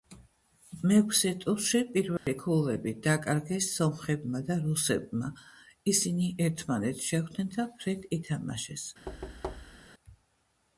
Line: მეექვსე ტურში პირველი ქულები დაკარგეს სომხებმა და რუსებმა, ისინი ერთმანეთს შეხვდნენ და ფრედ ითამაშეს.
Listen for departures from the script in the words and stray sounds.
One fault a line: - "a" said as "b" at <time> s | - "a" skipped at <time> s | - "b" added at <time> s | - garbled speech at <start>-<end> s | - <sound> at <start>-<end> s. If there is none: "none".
- dropout at 2.2-2.3 s
- thud at 9.1-9.9 s